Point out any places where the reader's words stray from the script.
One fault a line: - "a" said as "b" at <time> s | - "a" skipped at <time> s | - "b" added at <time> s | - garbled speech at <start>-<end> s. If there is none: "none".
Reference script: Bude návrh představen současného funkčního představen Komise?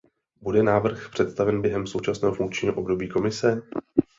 - "během" added at 1.6 s
- "představen" said as "období" at 2.7 s